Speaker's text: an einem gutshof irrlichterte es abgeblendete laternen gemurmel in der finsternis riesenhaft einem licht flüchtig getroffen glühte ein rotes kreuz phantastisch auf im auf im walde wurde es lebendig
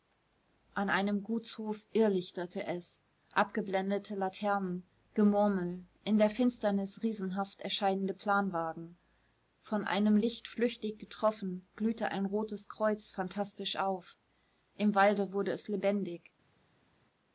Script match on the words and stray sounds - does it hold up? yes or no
no